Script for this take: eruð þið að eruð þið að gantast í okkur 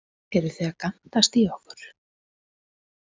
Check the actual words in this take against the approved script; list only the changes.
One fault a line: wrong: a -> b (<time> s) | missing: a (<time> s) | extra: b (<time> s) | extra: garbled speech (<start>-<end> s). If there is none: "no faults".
missing: eruð þið að (0.8 s)